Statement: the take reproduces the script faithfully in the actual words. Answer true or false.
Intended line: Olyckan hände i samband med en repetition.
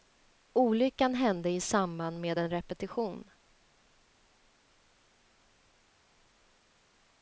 true